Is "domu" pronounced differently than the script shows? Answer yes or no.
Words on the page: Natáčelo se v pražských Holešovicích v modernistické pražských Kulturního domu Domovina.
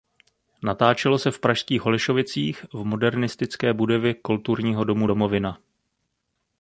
no